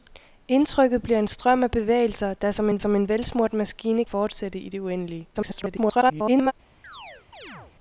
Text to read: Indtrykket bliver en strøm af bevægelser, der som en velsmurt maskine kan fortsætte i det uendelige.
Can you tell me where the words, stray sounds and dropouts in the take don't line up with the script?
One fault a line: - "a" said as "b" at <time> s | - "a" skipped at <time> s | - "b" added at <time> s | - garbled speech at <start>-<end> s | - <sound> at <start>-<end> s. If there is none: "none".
- "som en" added at 2.8 s
- "kan" skipped at 4.0 s
- garbled speech at 5.3-6.5 s
- chirp at 6.8-7.7 s